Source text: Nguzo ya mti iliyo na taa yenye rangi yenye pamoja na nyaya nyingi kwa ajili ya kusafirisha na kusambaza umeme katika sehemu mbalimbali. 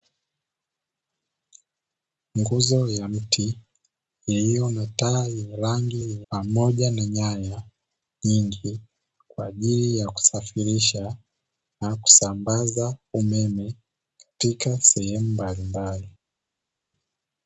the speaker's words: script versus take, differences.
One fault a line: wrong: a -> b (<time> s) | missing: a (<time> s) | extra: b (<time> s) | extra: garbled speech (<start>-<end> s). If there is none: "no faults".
no faults